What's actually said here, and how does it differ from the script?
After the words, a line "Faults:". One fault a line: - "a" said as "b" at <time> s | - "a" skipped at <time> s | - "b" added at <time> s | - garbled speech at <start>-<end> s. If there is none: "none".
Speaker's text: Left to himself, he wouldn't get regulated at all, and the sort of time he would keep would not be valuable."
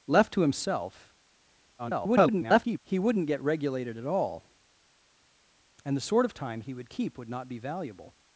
Left to himself, [garbled] he wouldn't get regulated at all, and the sort of time he would keep would not be valuable."
Faults:
- garbled speech at 1.8-2.8 s